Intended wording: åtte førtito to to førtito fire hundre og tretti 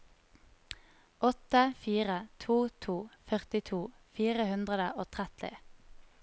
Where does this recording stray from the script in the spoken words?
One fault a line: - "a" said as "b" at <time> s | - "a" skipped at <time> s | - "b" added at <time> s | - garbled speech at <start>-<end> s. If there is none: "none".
- "førtito" said as "fire" at 1.8 s